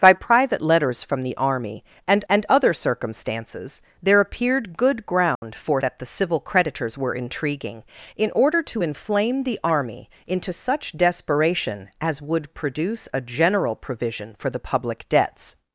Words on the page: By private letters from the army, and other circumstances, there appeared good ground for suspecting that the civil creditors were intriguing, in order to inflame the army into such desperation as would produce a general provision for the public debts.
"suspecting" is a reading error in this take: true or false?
true